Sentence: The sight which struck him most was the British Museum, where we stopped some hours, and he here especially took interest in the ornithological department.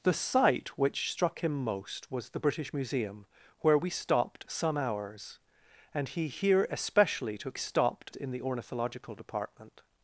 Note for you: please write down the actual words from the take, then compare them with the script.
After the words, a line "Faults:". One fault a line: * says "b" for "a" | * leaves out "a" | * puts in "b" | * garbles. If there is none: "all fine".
The sight which struck him most was the British Museum, where we stopped some hours, and he here especially took stopped in the ornithological department.
Faults:
* says "stopped" for "interest"